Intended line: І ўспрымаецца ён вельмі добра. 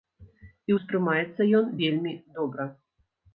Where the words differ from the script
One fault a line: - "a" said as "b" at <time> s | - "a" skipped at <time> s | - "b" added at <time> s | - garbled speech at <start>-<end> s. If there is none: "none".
none